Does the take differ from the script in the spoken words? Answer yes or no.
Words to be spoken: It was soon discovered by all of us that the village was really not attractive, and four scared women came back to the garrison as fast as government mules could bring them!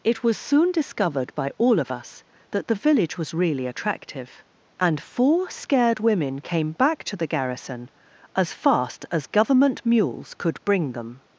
yes